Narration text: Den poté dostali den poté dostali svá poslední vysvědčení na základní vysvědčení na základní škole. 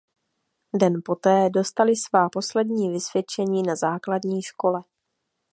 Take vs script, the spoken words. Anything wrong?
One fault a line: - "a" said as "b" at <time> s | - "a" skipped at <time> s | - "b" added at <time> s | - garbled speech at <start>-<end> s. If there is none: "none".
- "den poté dostali" skipped at 1.9 s
- "vysvědčení na základní" skipped at 4.4 s